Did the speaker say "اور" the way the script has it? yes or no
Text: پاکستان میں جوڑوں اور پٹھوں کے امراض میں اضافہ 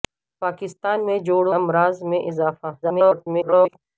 no